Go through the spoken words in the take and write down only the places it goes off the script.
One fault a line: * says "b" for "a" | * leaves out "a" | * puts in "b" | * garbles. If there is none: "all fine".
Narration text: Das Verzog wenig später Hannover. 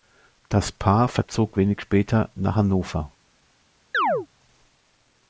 * puts in "Paar"
* puts in "nach"